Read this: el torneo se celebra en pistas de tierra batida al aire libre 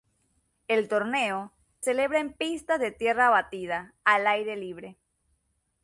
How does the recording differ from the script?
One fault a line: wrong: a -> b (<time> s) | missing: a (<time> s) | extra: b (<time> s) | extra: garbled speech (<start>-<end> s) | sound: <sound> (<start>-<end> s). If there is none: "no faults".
missing: se (1.5 s)